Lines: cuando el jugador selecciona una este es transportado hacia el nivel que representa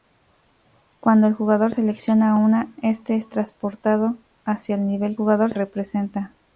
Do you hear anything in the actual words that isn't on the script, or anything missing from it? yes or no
yes